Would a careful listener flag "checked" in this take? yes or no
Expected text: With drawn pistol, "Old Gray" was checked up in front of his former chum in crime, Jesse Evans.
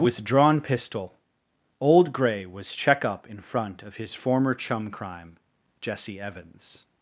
yes